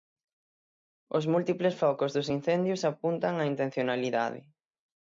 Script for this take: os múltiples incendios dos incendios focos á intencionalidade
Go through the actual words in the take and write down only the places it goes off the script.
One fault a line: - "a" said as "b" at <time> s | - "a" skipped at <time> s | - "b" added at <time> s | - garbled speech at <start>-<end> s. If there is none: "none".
- "incendios" said as "focos" at 1.8 s
- "focos" said as "apuntan" at 2.9 s